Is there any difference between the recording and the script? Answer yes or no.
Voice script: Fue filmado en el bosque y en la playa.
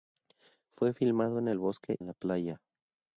yes